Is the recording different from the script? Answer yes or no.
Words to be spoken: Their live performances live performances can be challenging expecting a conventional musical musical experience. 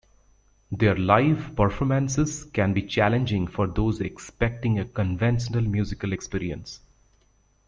yes